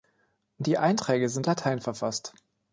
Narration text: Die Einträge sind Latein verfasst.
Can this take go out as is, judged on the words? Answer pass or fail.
pass